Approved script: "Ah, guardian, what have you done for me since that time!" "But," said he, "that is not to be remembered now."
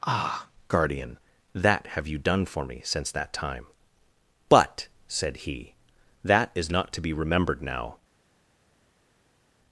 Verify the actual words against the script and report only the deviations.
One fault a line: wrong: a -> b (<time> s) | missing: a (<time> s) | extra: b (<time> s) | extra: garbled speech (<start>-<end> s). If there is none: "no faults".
wrong: what -> that (1.5 s)